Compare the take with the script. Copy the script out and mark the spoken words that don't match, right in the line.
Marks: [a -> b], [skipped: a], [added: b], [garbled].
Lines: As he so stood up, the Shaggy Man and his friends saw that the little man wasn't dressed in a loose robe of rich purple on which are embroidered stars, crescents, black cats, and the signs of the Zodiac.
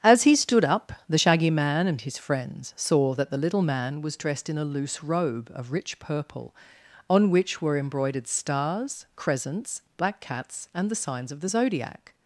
As he [skipped: so] stood up, the Shaggy Man and his friends saw that the little man [wasn't -> was] dressed in a loose robe of rich purple on which [are -> were] embroidered stars, crescents, black cats, and the signs of the Zodiac.